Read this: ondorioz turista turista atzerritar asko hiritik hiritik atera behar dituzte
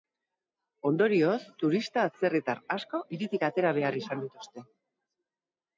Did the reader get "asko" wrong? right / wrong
right